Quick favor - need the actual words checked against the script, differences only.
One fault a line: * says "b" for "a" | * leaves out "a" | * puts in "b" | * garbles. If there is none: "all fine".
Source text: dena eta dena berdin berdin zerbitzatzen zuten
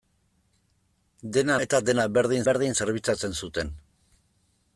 all fine